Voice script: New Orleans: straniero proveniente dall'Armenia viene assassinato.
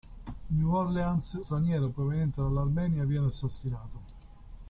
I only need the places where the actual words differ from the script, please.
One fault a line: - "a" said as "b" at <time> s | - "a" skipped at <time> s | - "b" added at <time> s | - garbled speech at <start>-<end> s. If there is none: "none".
none